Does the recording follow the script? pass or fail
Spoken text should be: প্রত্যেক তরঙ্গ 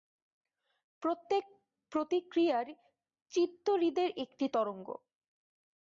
fail